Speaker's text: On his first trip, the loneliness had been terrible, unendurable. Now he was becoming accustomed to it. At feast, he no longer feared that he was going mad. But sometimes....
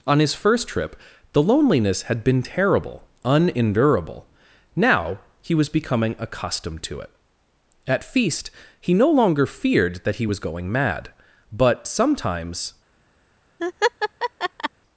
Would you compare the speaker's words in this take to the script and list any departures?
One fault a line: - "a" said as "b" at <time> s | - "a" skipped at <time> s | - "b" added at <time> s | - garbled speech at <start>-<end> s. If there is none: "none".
none